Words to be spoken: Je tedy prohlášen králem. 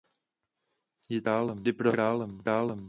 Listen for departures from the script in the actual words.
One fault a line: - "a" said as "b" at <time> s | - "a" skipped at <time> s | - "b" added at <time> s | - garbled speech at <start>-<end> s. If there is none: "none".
- "tedy" said as "králem" at 1.2 s